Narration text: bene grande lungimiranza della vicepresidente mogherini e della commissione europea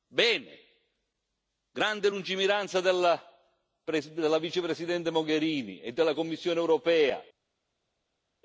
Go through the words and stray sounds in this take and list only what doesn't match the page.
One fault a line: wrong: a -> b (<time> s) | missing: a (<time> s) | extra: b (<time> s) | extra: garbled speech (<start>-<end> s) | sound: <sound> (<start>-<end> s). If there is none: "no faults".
no faults